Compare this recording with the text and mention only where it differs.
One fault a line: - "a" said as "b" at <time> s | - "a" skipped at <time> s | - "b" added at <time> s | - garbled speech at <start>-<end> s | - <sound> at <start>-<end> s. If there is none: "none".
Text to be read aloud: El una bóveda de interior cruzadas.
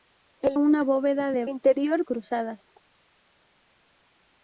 none